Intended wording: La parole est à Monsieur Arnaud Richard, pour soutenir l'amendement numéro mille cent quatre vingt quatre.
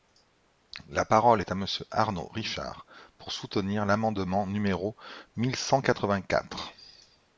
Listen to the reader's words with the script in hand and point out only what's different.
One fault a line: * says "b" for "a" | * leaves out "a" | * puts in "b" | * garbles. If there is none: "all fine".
all fine